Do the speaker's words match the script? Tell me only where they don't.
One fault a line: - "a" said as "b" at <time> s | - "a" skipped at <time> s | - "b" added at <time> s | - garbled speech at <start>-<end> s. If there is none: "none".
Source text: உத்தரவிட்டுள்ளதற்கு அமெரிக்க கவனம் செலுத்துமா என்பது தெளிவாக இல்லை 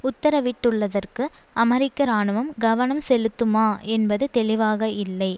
- "இராணுவம்" added at 2.0 s